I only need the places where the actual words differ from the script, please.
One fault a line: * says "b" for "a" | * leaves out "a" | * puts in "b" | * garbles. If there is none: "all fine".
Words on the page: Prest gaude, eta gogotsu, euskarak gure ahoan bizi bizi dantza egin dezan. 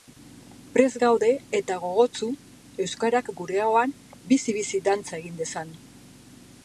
all fine